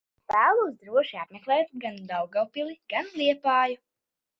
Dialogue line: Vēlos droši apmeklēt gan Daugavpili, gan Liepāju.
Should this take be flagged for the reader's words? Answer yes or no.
no